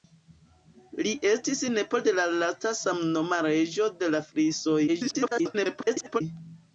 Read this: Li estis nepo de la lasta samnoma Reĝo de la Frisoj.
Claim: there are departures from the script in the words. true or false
true